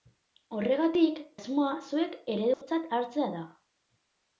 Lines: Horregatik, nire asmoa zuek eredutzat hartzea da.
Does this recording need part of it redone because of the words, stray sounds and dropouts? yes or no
yes